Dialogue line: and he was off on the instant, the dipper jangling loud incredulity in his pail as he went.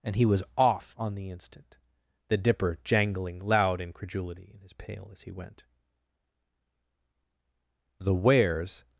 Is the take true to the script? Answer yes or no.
no